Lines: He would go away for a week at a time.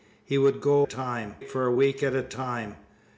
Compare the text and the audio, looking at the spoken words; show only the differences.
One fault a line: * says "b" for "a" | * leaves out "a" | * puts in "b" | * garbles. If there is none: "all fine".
* says "time" for "away"